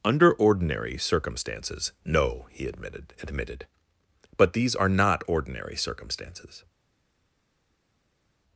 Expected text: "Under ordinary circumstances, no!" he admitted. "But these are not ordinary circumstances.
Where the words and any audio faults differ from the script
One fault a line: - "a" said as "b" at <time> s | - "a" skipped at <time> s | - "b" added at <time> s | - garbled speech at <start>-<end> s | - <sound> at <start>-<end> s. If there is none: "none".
- "admitted" added at 3.2 s